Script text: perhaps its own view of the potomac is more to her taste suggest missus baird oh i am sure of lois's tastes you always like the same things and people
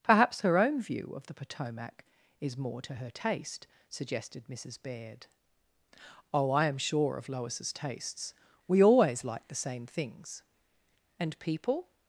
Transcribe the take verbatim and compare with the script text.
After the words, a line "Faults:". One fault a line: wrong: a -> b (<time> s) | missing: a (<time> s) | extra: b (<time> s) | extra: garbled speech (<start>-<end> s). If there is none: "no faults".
perhaps her own view of the potomac is more to her taste suggested missus baird oh i am sure of lois's tastes we always like the same things and people
Faults:
wrong: its -> her (0.4 s)
wrong: suggest -> suggested (3.9 s)
wrong: you -> we (8.7 s)